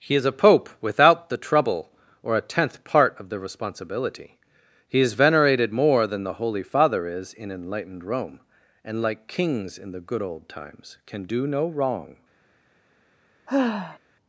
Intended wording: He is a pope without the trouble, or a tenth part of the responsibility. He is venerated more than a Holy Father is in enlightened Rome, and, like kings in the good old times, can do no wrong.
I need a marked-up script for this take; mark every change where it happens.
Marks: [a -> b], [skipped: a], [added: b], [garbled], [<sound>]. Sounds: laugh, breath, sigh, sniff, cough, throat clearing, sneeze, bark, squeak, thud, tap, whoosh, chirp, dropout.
He is a pope without the trouble, or a tenth part of the responsibility. He is venerated more than [a -> the] Holy Father is in enlightened Rome, and, like kings in the good old times, can do no wrong. [sigh]